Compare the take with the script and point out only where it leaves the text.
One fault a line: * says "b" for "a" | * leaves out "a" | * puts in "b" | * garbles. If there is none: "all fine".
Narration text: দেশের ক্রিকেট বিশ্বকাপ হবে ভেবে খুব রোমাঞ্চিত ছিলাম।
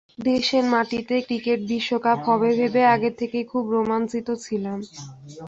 * puts in "মাটিতে"
* puts in "আগে থেকেই"